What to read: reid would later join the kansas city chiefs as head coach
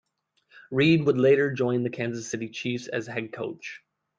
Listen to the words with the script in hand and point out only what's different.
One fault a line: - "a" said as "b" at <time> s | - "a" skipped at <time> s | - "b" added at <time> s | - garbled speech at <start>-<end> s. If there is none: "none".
none